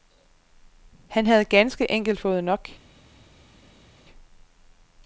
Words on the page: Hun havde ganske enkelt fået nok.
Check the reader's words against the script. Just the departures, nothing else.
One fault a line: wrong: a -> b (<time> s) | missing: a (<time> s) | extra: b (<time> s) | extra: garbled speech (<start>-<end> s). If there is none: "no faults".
wrong: Hun -> Han (1.1 s)